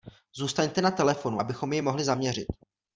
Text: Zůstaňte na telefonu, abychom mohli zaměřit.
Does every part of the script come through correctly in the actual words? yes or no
no